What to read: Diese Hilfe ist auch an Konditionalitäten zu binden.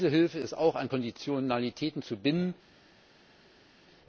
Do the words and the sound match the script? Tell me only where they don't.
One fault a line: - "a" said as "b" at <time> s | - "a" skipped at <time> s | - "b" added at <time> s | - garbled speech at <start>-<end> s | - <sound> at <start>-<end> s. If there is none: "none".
none